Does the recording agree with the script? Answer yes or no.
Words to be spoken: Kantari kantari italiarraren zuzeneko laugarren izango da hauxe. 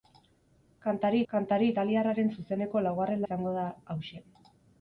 yes